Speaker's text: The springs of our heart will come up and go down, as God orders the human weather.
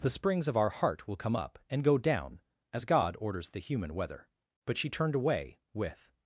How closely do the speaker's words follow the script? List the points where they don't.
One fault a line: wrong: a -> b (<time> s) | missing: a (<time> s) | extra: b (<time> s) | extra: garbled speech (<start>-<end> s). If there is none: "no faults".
extra: But she turned away with (4.7 s)